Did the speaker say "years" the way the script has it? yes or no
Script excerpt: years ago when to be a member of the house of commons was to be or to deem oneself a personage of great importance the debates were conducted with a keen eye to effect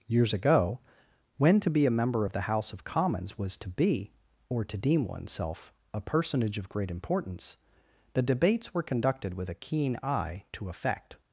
yes